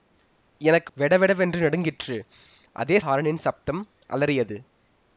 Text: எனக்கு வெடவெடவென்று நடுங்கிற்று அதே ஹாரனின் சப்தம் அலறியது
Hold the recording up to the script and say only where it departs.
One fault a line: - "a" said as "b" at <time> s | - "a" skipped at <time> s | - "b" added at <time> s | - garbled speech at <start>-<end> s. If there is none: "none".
none